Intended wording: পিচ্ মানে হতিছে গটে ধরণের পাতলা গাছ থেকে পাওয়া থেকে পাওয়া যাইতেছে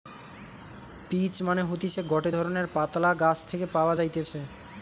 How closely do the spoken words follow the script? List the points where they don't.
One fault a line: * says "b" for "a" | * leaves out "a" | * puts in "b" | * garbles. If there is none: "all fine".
* leaves out "থেকে পাওয়া"